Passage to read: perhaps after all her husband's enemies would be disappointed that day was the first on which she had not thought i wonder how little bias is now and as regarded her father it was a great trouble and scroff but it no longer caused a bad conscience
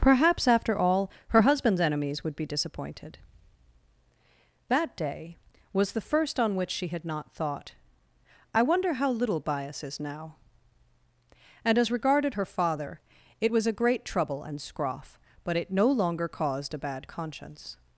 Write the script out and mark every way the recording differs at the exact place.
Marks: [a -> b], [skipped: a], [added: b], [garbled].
perhaps after all her husband's enemies would be disappointed that day was the first on which she had not thought i wonder how little bias is now and as regarded her father it was a great trouble and scroff but it no longer caused a bad conscience